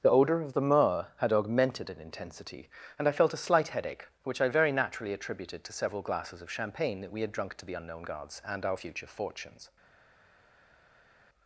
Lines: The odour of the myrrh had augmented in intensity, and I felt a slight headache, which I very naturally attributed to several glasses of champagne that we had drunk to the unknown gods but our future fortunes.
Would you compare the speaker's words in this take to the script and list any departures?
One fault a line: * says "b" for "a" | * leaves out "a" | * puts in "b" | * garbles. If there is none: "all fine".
* says "and" for "but"